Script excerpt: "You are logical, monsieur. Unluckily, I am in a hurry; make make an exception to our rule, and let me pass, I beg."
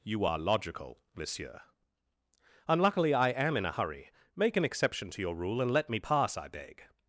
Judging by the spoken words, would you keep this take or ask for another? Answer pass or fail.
fail